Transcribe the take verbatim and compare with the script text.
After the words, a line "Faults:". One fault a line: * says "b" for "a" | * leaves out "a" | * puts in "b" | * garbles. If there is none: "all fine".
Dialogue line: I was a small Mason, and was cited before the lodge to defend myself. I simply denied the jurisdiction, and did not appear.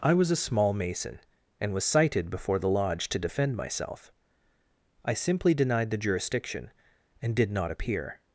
I was a small Mason, and was cited before the lodge to defend myself. I simply denied the jurisdiction, and did not appear.
Faults:
all fine